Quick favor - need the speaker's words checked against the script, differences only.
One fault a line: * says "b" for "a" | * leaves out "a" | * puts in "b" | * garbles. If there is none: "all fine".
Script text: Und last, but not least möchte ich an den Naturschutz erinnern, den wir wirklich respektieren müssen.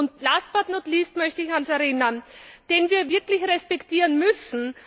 * leaves out "den Naturschutz"